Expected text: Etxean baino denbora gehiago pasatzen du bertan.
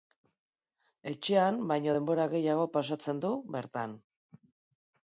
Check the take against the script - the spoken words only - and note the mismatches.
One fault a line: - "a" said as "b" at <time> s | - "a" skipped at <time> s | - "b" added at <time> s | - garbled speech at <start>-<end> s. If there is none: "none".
none